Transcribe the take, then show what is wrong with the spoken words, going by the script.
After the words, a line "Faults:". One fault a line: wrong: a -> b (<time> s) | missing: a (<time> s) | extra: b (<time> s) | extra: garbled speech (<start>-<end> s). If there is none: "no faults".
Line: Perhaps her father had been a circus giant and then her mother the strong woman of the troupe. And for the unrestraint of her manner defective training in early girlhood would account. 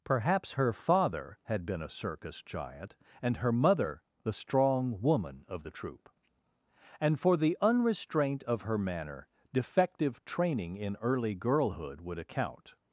Perhaps her father had been a circus giant and her mother the strong woman of the troupe. And for the unrestraint of her manner defective training in early girlhood would account.
Faults:
missing: then (3.4 s)